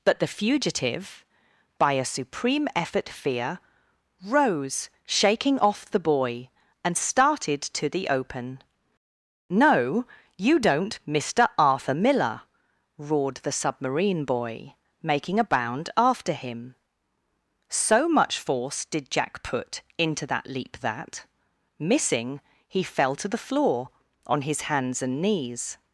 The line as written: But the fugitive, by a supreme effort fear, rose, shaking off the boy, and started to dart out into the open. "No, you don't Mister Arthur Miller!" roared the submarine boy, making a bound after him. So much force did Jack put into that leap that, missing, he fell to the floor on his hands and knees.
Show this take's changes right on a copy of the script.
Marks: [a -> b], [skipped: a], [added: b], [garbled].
But the fugitive, by a supreme effort fear, rose, shaking off the boy, and started to [skipped: dart out into] the open. "No, you don't Mister Arthur Miller!" roared the submarine boy, making a bound after him. So much force did Jack put into that leap that, missing, he fell to the floor on his hands and knees.